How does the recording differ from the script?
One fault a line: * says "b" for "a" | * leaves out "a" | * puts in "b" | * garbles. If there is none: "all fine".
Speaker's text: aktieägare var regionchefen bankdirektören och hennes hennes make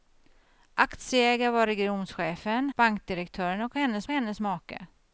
all fine